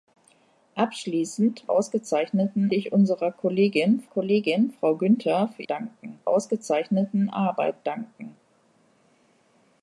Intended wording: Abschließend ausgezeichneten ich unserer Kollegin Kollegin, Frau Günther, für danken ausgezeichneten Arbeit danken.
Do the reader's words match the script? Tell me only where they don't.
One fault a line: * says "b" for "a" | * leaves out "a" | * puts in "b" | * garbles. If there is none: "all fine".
all fine